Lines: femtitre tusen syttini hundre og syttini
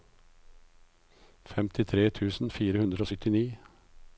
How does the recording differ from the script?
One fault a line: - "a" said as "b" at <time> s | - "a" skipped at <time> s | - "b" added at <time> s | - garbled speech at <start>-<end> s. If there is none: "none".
- "syttini" said as "fire" at 2.6 s